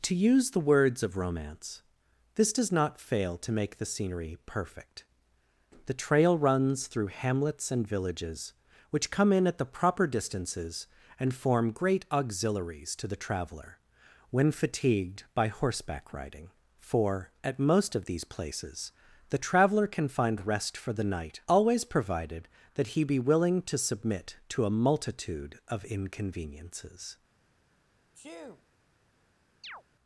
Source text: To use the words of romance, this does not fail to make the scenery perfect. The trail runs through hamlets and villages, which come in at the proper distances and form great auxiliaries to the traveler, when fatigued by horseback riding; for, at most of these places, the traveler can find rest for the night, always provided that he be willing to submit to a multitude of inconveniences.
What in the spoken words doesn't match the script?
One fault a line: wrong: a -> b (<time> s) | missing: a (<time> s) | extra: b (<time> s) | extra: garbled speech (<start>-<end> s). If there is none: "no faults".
no faults